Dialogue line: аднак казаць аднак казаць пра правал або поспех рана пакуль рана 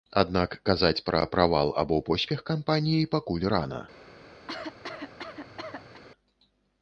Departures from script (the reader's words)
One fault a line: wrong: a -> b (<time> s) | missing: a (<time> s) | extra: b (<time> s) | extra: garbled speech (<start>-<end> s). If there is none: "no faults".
missing: аднак казаць (1.0 s)
wrong: рана -> кампаніі (2.5 s)